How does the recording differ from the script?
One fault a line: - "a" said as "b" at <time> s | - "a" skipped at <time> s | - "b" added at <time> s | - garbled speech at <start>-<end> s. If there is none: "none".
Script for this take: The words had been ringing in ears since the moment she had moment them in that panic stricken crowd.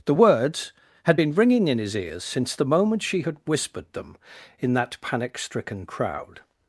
- "his" added at 1.8 s
- "moment" said as "whispered" at 3.5 s